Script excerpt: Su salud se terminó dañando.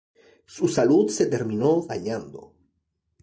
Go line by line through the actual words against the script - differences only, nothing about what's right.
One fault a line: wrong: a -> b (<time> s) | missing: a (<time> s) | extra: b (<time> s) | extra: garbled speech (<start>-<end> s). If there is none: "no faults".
no faults